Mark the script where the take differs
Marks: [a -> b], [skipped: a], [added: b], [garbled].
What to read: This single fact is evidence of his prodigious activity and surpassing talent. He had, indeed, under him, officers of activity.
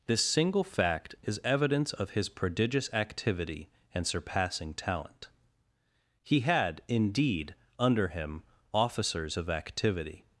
This single fact is evidence of his prodigious activity and surpassing talent. He had, indeed, under him, officers of activity.